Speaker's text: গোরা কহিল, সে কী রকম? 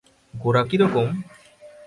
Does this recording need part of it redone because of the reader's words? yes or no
yes